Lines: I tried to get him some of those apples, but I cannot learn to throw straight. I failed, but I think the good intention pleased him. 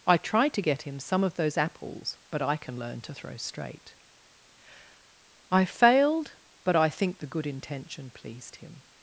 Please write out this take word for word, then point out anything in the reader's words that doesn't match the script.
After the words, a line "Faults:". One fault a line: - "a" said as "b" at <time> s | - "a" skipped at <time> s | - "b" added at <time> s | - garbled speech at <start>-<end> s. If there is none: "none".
I tried to get him some of those apples, but I can learn to throw straight. I failed, but I think the good intention pleased him.
Faults:
- "cannot" said as "can" at 2.6 s